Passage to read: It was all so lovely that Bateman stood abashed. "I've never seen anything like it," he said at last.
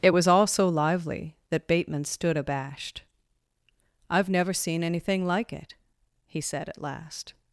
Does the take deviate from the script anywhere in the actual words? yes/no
yes